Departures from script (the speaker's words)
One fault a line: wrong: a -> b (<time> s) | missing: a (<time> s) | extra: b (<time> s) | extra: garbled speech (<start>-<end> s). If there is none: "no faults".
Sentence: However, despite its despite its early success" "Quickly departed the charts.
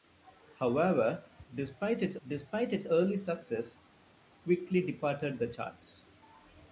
no faults